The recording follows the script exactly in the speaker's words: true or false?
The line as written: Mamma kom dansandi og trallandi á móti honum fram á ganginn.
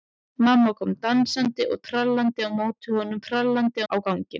false